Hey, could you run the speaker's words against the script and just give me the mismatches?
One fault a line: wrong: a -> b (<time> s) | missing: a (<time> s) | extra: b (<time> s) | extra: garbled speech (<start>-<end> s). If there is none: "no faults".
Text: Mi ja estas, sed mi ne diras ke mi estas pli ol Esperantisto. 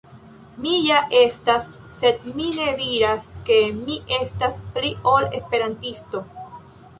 no faults